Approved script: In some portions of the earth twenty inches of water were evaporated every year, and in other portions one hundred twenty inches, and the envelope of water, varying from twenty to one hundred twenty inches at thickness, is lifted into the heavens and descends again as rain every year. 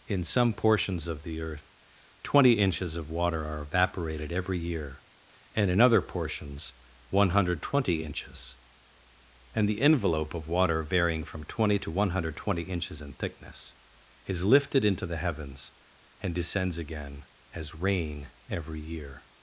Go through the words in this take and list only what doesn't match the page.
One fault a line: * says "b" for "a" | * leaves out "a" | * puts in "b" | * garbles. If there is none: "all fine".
* says "are" for "were"
* says "in" for "at"